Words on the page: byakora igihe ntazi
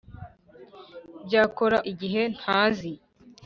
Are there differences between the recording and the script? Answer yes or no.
no